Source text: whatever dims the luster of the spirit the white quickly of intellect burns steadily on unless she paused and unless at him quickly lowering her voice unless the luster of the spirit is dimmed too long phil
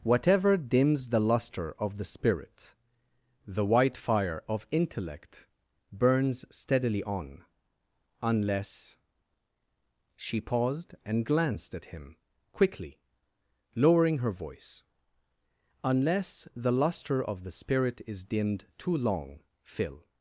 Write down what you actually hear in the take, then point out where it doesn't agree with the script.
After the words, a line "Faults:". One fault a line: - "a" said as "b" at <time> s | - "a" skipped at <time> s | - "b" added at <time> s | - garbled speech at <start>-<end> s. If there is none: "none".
whatever dims the luster of the spirit the white fire of intellect burns steadily on unless she paused and glanced at him quickly lowering her voice unless the luster of the spirit is dimmed too long phil
Faults:
- "quickly" said as "fire" at 4.0 s
- "unless" said as "glanced" at 11.2 s